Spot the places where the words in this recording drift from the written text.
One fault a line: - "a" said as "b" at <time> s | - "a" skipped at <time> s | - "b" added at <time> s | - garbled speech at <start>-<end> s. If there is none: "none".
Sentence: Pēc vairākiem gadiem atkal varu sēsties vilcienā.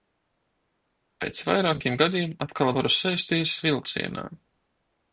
none